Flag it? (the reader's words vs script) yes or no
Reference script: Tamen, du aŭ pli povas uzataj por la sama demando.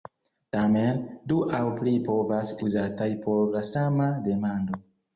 no